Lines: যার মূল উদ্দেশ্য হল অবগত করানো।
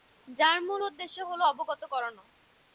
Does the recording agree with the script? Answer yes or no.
yes